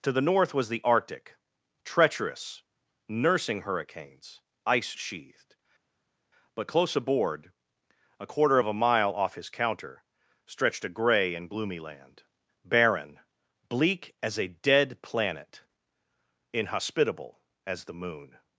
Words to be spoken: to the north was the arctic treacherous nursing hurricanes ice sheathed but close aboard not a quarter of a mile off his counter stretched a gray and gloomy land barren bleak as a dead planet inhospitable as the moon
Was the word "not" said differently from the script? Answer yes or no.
yes